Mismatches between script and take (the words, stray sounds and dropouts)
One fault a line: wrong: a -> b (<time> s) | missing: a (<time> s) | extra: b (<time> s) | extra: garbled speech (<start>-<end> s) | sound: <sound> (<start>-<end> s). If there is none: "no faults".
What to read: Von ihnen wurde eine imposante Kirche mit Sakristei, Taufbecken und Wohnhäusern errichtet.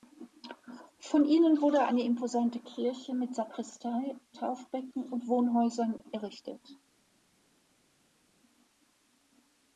no faults